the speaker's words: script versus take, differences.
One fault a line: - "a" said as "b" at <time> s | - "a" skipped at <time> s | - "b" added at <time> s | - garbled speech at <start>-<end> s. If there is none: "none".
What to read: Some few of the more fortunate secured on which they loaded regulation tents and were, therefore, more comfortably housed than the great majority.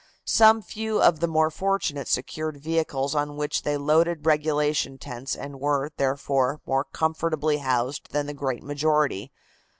- "vehicles" added at 2.6 s